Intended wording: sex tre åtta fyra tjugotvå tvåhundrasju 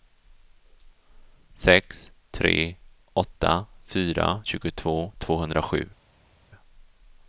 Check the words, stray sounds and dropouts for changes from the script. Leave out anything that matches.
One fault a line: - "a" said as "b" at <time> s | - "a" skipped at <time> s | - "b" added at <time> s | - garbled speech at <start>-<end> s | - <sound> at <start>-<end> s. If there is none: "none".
none